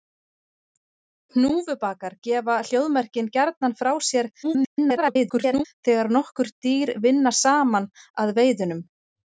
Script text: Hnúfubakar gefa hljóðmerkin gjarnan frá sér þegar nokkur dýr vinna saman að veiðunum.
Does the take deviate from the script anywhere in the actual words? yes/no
yes